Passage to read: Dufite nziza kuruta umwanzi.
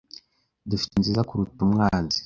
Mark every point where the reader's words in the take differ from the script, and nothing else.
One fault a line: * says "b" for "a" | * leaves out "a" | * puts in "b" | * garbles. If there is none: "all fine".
all fine